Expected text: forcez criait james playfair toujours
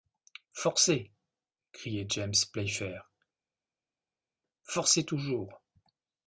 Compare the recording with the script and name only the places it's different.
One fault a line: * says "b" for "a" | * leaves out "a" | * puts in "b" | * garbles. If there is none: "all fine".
* puts in "forcez"